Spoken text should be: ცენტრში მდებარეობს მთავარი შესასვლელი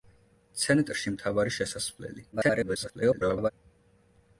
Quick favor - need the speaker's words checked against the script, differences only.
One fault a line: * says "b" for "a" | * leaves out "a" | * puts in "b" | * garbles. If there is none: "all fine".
* leaves out "მდებარეობს"
* garbles